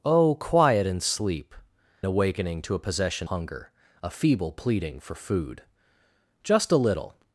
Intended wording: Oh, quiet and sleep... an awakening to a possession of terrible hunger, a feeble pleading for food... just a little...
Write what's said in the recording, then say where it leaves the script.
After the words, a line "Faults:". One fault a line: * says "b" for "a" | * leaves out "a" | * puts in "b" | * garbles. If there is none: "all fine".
Oh, quiet and sleep... awakening to a possession hunger, a feeble pleading for food... just a little...
Faults:
* leaves out "an"
* leaves out "of terrible"